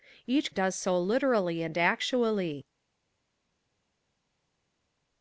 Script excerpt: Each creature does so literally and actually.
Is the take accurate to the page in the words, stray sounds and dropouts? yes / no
no